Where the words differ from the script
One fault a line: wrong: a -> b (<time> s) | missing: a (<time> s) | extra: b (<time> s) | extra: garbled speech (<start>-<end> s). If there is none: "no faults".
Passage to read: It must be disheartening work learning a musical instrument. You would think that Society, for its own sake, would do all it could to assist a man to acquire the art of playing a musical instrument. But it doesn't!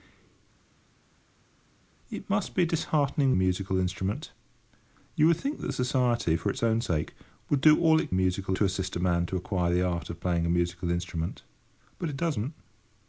missing: work learning (3.3 s)
wrong: could -> musical (8.1 s)